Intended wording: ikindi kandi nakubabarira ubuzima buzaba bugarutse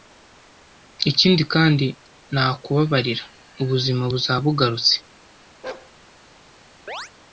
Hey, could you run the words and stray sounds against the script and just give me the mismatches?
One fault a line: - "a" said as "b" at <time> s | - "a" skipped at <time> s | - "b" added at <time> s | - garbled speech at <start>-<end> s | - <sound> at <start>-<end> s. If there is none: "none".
- bark at 5.6-5.9 s
- chirp at 6.9-7.1 s